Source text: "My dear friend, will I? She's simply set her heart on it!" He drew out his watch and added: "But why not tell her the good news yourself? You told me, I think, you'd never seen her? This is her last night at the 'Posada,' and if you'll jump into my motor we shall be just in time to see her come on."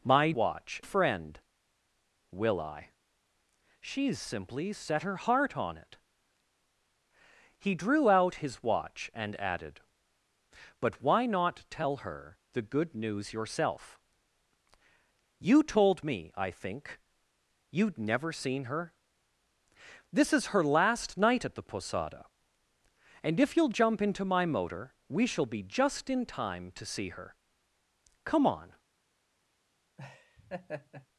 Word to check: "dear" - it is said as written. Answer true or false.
false